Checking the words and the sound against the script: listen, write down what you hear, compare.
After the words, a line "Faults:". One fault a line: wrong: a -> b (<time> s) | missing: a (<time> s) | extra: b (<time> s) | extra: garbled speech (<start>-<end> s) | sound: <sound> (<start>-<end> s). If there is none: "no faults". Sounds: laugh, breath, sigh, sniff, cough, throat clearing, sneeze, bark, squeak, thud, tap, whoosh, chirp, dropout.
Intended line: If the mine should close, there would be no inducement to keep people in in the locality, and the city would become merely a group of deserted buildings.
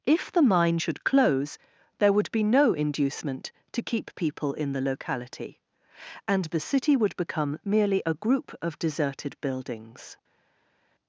If the mine should close, there would be no inducement to keep people in the locality, and the city would become merely a group of deserted buildings.
Faults:
missing: in (4.7 s)